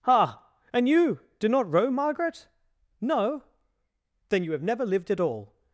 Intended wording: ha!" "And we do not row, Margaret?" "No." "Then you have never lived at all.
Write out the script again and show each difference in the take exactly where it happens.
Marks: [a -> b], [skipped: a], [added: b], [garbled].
ha!" "And [we -> you] do not row, Margaret?" "No." "Then you have never lived at all.